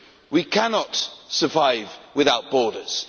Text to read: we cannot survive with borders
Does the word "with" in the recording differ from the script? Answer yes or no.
yes